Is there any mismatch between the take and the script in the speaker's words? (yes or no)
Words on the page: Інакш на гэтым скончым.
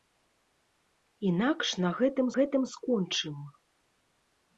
yes